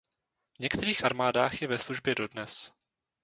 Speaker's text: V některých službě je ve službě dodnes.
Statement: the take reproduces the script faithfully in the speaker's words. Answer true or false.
false